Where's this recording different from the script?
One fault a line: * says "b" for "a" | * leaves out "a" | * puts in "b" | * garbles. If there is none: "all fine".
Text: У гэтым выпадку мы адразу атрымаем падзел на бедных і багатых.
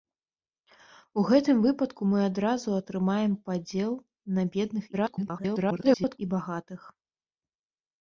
* garbles